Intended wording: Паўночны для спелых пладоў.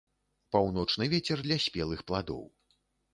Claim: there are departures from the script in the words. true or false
true